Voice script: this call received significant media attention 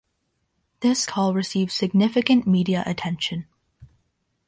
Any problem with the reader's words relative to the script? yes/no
no